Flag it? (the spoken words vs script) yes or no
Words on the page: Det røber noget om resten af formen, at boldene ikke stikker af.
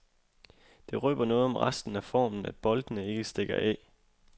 no